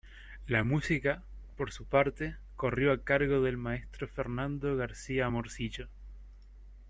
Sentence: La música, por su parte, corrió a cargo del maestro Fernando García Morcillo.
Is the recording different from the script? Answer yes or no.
no